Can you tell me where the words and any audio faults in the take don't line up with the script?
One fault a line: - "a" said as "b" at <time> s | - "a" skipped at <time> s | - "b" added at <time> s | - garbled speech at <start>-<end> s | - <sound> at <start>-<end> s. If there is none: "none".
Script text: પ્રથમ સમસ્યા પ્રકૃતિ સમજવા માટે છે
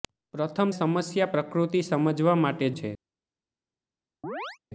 - chirp at 4.2-4.6 s